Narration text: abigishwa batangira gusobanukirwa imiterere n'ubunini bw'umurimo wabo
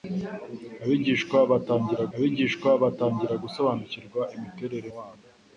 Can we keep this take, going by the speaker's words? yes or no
no